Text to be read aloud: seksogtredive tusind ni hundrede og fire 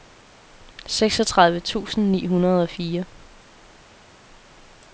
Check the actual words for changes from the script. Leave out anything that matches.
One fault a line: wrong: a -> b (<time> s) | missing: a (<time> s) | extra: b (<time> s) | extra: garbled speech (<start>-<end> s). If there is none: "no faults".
no faults